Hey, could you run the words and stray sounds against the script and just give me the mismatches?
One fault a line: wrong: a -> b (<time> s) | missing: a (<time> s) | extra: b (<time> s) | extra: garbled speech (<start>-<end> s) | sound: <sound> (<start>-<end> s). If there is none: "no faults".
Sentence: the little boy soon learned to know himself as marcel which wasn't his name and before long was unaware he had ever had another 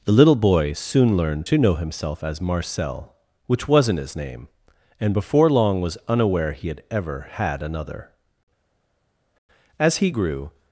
extra: as he grew (9.8 s)